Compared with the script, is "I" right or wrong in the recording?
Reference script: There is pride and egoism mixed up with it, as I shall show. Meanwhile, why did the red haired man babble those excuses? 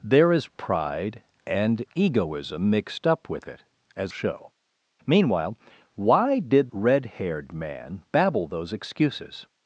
wrong